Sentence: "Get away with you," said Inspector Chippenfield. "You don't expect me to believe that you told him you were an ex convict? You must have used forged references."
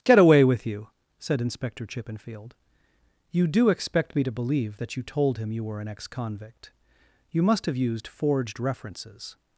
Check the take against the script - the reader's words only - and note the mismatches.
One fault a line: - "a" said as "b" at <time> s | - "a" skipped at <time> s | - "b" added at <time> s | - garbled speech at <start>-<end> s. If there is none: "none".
- "don't" said as "do" at 3.5 s